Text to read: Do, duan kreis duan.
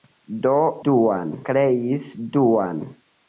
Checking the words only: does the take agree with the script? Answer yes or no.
yes